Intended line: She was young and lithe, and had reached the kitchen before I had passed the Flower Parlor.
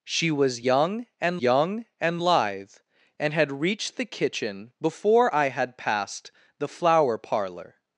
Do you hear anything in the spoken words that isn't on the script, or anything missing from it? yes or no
yes